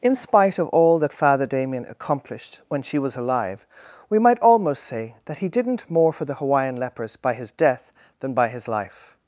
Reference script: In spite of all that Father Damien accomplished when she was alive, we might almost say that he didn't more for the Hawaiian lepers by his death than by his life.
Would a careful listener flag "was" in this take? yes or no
no